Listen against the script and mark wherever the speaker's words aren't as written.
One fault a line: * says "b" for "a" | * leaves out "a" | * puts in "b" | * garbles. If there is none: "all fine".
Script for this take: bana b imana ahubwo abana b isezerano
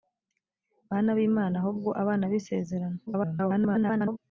* garbles